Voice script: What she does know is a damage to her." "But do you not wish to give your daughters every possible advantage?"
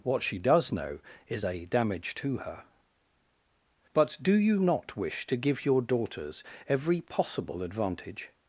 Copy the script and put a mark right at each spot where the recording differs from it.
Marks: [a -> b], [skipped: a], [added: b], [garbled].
What she does know is a damage to her." "But do you not wish to give your daughters every possible advantage?"